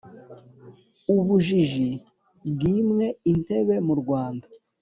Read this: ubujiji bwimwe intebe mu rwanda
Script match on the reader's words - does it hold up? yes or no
yes